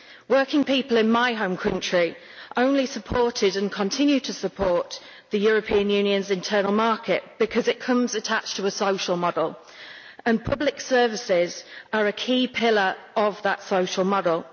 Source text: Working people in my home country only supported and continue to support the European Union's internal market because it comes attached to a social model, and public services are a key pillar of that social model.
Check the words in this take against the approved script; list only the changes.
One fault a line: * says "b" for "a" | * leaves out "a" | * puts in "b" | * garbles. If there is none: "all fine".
all fine